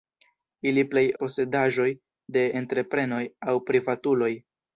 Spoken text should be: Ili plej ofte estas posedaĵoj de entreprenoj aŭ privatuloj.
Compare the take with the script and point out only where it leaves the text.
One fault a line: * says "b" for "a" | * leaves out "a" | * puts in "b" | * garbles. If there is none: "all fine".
* leaves out "ofte estas"